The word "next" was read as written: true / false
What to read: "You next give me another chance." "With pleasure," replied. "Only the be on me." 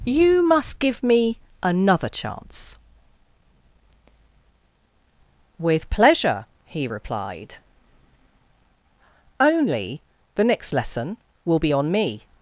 false